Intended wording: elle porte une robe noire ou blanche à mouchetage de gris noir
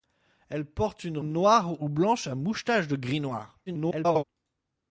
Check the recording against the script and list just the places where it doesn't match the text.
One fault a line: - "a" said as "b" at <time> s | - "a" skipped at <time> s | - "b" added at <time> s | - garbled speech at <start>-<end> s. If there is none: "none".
- "robe" skipped at 1.2 s
- garbled speech at 3.7-4.2 s